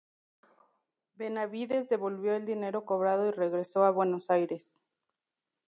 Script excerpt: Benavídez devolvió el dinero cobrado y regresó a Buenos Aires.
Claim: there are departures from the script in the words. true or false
false